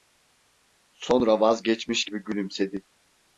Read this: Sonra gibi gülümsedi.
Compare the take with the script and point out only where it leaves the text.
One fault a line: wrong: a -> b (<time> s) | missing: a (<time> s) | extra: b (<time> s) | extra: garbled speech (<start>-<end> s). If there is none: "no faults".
extra: vazgeçmiş (1.4 s)